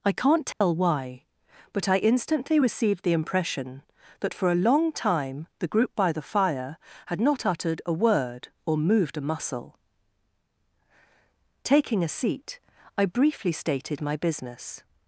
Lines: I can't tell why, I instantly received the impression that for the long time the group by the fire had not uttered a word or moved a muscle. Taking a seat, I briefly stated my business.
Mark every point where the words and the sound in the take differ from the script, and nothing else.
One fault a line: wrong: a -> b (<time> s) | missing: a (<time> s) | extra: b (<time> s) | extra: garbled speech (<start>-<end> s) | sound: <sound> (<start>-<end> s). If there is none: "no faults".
sound: dropout (0.5-0.6 s)
extra: but (1.7 s)
wrong: the -> a (4.5 s)